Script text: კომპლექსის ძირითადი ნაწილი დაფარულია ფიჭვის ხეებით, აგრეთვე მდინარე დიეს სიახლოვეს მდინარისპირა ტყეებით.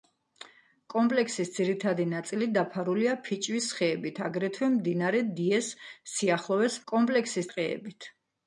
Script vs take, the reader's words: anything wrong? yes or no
yes